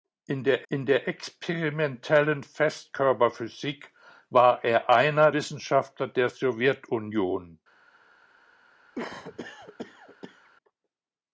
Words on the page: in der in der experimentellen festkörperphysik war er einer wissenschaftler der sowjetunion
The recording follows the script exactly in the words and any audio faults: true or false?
false